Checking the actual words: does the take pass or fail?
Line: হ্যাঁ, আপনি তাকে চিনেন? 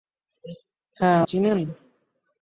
fail